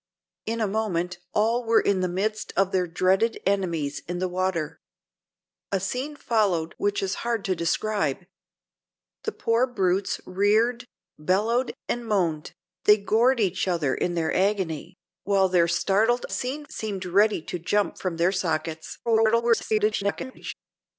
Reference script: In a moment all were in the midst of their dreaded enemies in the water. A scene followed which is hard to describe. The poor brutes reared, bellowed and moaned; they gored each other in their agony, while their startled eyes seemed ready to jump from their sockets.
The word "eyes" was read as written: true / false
false